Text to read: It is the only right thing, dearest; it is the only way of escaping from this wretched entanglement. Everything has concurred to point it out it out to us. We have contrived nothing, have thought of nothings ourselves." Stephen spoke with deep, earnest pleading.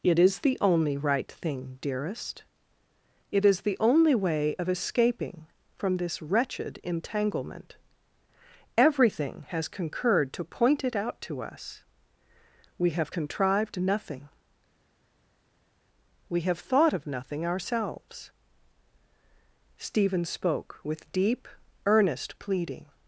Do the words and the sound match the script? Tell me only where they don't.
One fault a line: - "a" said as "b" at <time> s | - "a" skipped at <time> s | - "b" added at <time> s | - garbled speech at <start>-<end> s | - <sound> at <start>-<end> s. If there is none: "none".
- "it out" skipped at 11.2 s
- "we" added at 16.3 s
- "nothings" said as "nothing" at 17.0 s